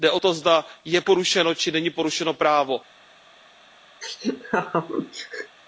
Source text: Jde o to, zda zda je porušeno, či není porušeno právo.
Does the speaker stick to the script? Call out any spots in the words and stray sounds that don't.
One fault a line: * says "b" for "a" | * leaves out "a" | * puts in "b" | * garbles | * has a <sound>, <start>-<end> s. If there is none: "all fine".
* leaves out "zda"
* has a laugh, 4.0-5.6 s